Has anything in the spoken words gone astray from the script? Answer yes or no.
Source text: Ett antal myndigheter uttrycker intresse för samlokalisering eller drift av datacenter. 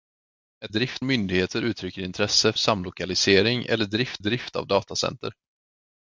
yes